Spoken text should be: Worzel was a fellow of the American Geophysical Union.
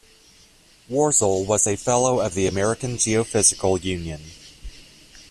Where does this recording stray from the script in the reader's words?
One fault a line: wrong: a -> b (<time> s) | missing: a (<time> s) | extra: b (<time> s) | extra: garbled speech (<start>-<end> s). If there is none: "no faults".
no faults